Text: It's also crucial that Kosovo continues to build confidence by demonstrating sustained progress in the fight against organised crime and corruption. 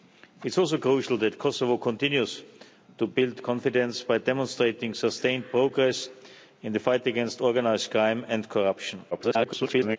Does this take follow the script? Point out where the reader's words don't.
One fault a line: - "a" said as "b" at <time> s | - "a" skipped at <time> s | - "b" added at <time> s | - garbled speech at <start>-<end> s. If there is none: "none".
- garbled speech at 9.1-10.0 s